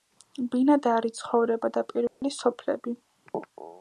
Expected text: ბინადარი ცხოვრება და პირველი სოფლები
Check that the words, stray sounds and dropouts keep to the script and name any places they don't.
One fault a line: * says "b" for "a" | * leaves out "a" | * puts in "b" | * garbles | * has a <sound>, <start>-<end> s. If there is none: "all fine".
* has a dropout, 2.1-2.2 s